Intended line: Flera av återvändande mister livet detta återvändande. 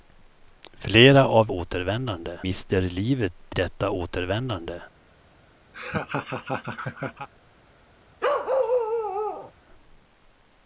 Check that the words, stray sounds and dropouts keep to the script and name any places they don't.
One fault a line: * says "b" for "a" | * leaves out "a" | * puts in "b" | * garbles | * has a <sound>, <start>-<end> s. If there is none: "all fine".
* has a laugh, 5.7-7.3 s
* has a bark, 8.2-9.5 s